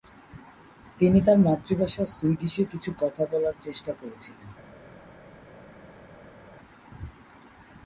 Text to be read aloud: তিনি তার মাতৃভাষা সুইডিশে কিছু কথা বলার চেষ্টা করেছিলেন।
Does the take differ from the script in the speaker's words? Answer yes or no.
no